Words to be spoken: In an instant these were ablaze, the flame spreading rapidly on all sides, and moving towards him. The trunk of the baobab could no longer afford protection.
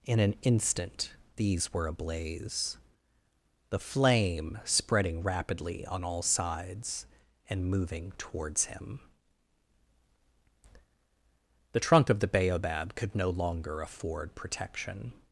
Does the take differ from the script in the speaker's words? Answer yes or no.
no